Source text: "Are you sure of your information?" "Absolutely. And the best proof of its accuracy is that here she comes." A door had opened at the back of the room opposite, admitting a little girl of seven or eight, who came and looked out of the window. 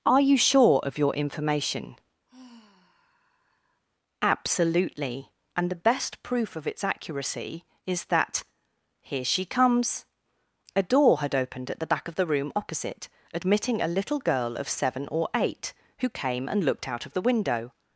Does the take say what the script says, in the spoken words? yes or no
yes